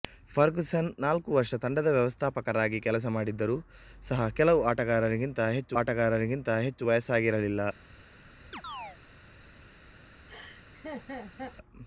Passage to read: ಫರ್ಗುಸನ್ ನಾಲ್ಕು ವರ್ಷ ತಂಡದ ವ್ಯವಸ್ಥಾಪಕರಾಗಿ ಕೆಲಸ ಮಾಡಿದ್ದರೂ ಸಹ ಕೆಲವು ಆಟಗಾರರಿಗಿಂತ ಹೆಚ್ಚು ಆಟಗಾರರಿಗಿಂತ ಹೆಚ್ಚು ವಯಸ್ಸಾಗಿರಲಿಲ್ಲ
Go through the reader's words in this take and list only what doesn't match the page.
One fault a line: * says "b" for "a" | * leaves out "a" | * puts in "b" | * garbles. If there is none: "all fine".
all fine